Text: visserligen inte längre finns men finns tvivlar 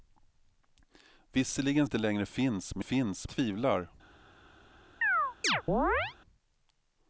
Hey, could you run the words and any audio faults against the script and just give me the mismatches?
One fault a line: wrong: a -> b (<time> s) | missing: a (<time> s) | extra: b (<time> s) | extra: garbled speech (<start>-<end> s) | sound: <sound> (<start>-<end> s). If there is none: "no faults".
sound: chirp (5.0-6.2 s)